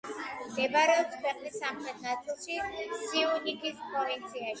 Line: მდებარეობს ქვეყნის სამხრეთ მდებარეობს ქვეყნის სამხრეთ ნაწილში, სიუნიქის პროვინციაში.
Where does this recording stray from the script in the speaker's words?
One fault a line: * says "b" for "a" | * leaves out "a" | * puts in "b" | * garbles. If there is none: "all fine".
* leaves out "მდებარეობს ქვეყნის სამხრეთ"